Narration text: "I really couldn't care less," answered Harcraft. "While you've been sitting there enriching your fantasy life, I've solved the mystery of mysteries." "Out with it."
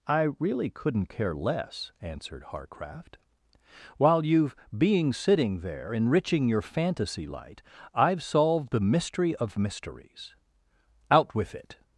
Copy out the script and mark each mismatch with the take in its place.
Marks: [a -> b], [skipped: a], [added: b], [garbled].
"I really couldn't care less," answered Harcraft. "While you've [been -> being] sitting there enriching your fantasy [life, -> light] I've solved the mystery of mysteries." "Out with it."